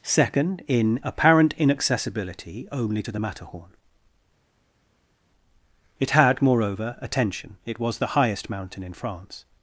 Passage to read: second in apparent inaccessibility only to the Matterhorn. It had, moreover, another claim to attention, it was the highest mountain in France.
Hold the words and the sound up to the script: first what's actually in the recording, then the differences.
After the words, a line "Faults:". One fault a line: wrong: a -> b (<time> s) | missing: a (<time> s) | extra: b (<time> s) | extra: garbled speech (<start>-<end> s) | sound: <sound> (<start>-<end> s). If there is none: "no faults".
second in apparent inaccessibility only to the Matterhorn. It had, moreover, attention, it was the highest mountain in France.
Faults:
missing: another claim to (7.0 s)